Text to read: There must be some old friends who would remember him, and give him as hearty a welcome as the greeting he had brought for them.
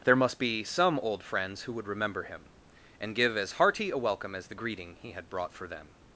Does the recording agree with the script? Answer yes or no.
no